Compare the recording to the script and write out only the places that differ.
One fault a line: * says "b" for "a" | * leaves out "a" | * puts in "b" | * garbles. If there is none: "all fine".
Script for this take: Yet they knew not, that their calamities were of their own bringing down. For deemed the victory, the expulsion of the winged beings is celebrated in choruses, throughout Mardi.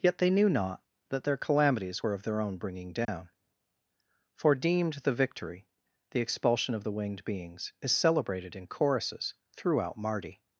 all fine